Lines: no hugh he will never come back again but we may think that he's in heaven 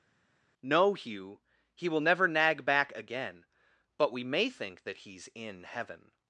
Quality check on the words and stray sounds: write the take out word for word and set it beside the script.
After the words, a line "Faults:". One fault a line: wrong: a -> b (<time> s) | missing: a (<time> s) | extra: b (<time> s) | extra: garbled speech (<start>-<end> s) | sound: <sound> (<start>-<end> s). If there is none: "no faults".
no hugh he will never nag back again but we may think that he's in heaven
Faults:
wrong: come -> nag (2.3 s)